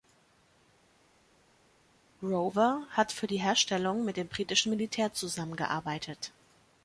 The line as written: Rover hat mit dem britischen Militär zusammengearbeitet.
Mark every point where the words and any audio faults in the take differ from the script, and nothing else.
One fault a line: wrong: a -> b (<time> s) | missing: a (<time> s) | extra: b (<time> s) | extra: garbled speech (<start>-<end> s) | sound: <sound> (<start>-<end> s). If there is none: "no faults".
extra: für die Herstellung (3.1 s)